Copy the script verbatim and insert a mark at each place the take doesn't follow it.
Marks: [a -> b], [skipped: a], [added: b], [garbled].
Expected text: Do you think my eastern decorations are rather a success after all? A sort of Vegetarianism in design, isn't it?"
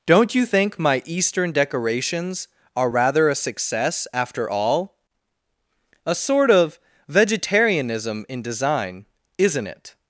[Do -> Don't] you think my eastern decorations are rather a success after all? A sort of Vegetarianism in design, isn't it?"